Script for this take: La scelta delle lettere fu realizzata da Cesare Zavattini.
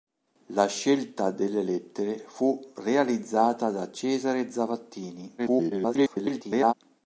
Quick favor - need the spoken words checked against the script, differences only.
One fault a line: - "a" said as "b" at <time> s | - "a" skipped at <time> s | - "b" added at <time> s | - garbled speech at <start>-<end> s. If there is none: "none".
- garbled speech at 5.4-6.7 s